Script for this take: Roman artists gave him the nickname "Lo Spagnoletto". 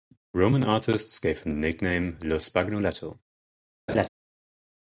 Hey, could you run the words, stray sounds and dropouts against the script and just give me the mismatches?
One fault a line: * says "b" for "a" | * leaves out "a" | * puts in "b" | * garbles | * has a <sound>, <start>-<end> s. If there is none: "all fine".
* has a laugh, 3.9-4.1 s